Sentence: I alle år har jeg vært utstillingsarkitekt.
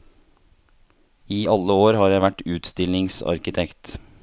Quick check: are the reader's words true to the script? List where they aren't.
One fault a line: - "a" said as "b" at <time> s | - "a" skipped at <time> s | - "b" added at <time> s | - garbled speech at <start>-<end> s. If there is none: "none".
none